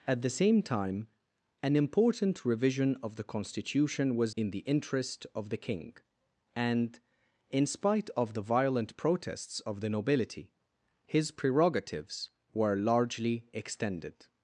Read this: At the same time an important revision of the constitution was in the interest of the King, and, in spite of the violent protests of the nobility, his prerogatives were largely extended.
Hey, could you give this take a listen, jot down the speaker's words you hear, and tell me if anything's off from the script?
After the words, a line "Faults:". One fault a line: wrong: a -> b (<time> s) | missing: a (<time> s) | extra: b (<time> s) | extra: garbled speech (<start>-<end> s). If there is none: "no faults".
At the same time an important revision of the constitution was in the interest of the King, and, in spite of the violent protests of the nobility, his prerogatives were largely extended.
Faults:
no faults